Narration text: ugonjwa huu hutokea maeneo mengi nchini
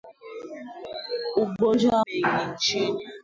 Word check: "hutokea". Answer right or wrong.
wrong